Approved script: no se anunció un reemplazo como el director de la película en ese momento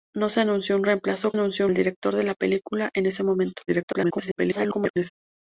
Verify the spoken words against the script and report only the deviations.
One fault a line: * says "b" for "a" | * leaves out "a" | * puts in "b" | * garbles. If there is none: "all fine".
* says "anunció" for "como"
* garbles